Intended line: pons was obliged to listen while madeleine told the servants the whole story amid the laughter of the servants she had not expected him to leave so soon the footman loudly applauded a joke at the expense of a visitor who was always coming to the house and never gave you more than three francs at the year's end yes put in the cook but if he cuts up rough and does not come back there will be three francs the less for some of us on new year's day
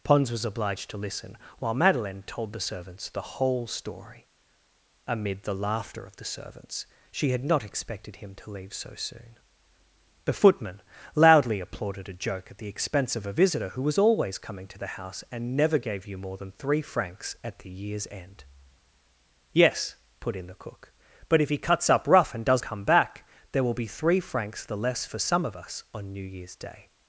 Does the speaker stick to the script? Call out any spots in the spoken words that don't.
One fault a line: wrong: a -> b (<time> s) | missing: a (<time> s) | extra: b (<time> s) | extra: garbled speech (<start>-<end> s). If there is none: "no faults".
missing: not (22.6 s)